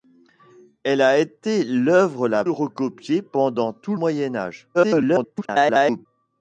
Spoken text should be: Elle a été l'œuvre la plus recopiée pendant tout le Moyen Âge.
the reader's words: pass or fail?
fail